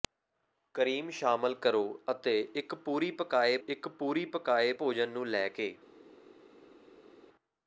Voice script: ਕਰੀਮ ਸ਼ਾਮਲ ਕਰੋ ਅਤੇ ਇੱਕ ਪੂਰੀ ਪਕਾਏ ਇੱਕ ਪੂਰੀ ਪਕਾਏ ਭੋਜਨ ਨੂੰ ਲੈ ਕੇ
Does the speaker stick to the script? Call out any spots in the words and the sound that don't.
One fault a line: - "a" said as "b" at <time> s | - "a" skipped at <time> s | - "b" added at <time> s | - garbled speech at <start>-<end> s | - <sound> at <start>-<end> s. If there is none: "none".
none